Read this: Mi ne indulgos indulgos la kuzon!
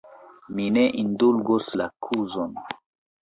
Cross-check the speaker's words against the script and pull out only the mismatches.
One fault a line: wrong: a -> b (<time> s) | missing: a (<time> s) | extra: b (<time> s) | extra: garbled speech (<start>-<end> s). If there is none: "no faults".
missing: indulgos (1.7 s)